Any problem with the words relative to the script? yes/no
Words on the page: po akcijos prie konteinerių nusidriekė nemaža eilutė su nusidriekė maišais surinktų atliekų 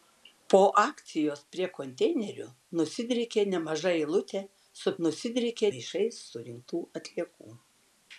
no